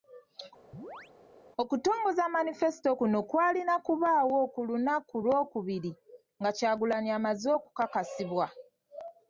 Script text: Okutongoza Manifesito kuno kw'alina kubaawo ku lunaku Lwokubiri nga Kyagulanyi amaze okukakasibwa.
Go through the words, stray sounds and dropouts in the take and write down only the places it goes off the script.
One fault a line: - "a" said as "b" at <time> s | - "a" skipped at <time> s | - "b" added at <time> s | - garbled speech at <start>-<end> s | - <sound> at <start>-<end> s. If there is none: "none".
- chirp at 0.7-1.1 s